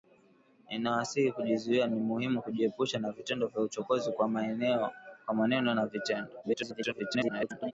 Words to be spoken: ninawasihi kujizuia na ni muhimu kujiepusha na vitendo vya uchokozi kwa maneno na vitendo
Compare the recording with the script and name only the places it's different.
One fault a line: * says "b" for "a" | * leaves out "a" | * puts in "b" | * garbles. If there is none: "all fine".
* leaves out "na"
* garbles